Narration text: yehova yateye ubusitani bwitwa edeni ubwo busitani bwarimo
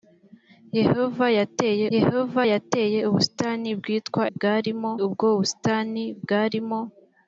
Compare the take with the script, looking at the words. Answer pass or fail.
fail